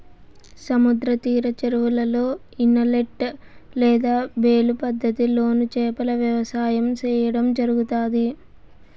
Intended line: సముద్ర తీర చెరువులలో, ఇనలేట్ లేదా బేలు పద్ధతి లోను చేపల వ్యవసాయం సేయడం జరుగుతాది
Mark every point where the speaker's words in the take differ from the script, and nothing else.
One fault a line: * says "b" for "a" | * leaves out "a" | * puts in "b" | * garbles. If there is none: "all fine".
all fine